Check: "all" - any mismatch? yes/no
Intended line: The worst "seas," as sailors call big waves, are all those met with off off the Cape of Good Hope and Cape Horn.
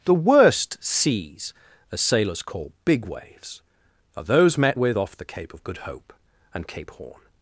yes